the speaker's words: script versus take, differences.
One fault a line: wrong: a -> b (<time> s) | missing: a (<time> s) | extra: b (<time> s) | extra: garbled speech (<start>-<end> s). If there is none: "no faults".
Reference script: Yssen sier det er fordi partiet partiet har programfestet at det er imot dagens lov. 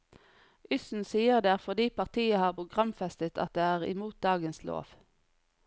missing: partiet (2.4 s)